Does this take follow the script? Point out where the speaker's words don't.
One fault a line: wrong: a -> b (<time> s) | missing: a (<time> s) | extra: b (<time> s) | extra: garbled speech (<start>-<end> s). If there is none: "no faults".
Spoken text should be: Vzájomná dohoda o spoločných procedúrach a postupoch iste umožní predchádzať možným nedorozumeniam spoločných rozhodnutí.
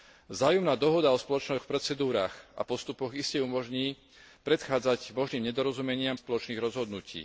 no faults